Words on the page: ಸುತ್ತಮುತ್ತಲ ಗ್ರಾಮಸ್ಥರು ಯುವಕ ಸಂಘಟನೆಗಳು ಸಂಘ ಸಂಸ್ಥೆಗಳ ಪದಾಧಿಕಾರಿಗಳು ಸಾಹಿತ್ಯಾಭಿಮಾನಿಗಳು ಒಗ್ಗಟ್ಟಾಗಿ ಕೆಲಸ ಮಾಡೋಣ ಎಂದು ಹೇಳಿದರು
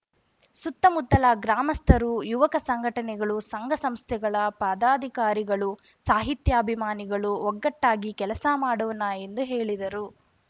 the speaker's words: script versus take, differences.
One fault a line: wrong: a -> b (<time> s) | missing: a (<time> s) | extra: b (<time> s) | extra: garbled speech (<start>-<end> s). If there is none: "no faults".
no faults